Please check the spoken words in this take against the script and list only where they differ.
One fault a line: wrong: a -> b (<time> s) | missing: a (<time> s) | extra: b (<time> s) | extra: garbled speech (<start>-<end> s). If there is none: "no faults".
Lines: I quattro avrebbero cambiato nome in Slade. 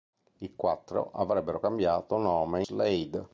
missing: in (2.6 s)